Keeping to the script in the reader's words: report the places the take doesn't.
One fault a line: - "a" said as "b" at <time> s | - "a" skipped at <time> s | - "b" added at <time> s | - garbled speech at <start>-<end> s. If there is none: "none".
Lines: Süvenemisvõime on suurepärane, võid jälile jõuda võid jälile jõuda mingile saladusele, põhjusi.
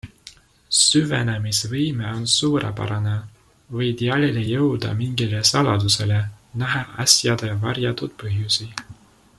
- "võid jälile jõuda mingile saladusele" said as "mingile saladusele näha asjade varjatud" at 5.0 s